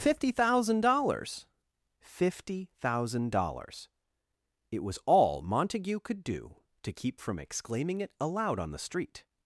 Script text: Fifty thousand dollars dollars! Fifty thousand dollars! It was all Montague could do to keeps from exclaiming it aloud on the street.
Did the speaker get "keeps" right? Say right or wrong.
wrong